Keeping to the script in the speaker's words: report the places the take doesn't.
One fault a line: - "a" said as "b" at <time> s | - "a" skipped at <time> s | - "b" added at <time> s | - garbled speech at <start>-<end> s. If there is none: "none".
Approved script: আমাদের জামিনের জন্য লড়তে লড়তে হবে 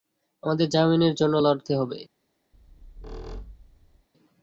- "লড়তে" skipped at 1.7 s